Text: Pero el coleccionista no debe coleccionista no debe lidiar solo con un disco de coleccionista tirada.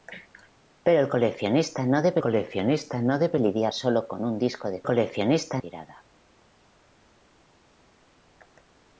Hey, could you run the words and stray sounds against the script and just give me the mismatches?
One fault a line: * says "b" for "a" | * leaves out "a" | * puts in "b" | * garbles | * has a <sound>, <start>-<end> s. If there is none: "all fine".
all fine